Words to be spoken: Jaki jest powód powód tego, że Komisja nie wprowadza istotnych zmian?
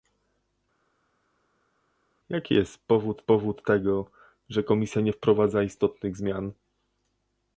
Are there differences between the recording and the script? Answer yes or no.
no